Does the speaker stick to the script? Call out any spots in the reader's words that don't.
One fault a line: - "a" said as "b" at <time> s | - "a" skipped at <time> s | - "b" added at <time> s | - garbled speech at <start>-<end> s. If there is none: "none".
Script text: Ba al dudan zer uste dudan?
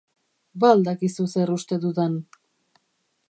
- "dudan" said as "dakizu" at 0.9 s